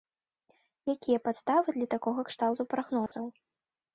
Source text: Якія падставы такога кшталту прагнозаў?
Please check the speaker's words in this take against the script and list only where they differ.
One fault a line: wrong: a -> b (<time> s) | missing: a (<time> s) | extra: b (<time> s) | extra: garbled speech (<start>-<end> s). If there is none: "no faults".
extra: для (1.8 s)